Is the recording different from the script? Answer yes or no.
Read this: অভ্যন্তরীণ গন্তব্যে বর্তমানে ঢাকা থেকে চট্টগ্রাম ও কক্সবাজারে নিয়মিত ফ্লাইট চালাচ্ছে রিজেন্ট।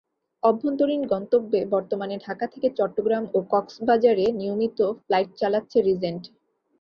no